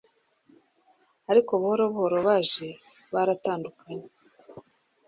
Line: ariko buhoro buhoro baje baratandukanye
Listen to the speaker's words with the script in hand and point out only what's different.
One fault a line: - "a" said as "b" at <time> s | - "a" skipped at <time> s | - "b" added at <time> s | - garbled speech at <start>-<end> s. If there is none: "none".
none